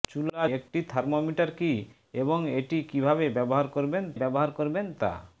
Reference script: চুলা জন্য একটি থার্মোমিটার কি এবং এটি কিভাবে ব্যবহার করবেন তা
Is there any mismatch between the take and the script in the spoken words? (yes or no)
yes